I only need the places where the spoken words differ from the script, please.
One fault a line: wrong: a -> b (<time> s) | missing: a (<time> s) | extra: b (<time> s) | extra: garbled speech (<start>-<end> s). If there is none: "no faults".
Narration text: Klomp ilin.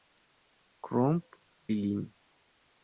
no faults